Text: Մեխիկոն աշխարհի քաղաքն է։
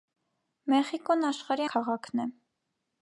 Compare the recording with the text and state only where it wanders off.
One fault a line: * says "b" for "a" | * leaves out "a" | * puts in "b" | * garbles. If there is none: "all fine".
all fine